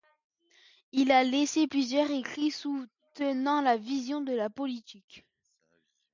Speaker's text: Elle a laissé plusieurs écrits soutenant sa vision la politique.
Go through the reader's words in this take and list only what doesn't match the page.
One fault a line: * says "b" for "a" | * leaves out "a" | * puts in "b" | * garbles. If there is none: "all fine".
* says "Il" for "Elle"
* puts in "de"